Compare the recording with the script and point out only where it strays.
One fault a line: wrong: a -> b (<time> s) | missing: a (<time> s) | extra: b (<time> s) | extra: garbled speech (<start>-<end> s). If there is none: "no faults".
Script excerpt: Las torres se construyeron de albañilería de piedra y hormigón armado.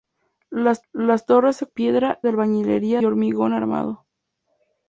extra: las (0.9 s)
wrong: construyeron -> piedra (1.7 s)
missing: de piedra y (3.0 s)